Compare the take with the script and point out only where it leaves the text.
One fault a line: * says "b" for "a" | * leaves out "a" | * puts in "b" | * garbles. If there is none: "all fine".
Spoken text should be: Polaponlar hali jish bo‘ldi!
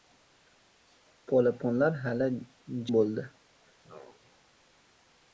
* leaves out "jish"